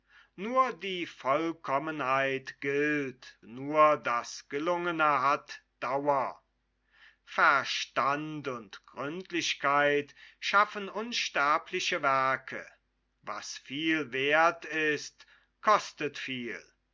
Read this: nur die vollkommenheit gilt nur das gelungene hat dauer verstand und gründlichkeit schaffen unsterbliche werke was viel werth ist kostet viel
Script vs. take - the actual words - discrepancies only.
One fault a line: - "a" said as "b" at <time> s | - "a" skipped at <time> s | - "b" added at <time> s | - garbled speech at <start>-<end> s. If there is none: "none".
none